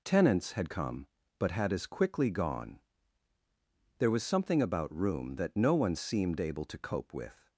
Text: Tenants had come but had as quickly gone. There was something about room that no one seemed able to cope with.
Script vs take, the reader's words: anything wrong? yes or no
no